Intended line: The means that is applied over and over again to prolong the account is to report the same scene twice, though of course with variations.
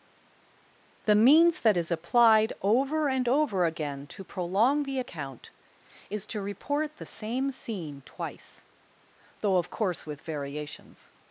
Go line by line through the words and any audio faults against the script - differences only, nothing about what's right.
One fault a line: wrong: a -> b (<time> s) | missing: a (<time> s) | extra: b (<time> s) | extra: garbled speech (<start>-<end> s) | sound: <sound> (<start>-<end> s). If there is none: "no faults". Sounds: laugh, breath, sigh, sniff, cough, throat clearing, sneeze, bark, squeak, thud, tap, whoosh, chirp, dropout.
no faults